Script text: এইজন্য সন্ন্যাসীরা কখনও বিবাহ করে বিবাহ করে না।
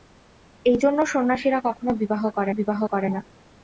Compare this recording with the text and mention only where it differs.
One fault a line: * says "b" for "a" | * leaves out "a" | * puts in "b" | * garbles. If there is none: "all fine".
all fine